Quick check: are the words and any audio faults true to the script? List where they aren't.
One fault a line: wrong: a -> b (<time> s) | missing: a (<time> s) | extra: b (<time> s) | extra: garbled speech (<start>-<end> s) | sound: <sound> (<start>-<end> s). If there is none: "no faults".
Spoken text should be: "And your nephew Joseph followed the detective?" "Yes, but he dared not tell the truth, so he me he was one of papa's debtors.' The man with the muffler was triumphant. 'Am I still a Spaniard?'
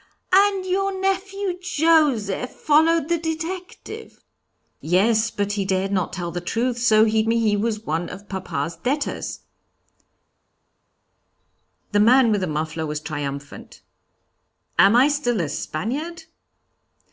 no faults